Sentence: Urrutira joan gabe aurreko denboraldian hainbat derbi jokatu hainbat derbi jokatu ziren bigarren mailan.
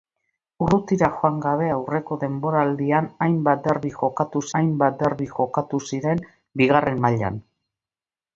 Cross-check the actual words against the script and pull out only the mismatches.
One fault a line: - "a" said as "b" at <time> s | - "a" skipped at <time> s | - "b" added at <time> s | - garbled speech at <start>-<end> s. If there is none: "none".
none